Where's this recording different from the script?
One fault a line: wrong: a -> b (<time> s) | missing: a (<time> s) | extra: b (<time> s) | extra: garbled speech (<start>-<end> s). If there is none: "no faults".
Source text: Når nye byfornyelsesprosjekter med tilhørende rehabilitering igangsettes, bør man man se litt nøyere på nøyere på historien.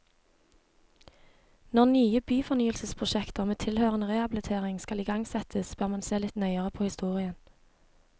extra: skal (4.8 s)
missing: man (6.0 s)
missing: nøyere på (6.8 s)